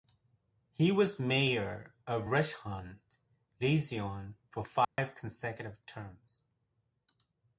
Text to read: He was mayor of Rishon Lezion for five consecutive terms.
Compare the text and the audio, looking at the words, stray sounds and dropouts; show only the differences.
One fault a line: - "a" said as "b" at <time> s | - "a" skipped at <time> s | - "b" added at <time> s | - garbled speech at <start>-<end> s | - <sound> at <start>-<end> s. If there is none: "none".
- dropout at 4.8-5.0 s